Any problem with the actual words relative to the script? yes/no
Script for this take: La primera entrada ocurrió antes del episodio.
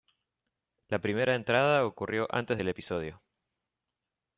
no